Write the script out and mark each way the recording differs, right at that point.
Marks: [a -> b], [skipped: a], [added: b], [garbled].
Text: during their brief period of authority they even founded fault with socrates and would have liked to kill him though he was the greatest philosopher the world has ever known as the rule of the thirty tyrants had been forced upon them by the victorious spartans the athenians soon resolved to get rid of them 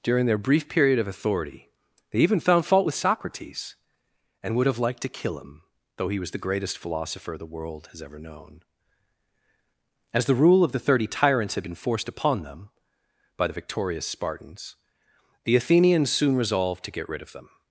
during their brief period of authority they even [founded -> found] fault with socrates and would have liked to kill him though he was the greatest philosopher the world has ever known as the rule of the thirty tyrants had been forced upon them by the victorious spartans the athenians soon resolved to get rid of them